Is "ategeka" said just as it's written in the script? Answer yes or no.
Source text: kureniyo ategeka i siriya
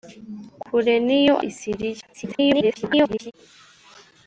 no